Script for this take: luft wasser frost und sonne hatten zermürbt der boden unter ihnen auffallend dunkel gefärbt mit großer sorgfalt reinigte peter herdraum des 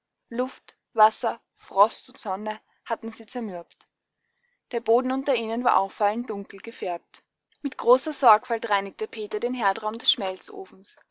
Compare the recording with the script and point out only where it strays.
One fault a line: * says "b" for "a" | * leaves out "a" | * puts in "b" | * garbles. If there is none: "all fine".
* puts in "sie"
* puts in "war"
* puts in "den"